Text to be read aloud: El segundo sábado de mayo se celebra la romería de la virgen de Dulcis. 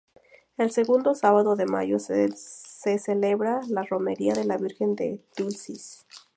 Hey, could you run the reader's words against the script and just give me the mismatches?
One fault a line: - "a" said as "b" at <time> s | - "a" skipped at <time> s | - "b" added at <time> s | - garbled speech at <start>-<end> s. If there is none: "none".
none